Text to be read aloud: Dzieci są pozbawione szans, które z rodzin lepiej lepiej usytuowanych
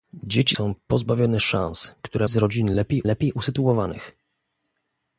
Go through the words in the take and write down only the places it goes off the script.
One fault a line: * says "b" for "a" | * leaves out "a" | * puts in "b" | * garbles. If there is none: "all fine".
all fine